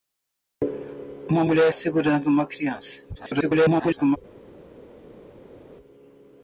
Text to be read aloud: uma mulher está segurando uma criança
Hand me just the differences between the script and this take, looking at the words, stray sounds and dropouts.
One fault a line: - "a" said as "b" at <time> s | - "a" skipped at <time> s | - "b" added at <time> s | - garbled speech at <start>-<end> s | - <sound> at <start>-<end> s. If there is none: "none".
- "está" skipped at 1.7 s
- garbled speech at 3.1-4.2 s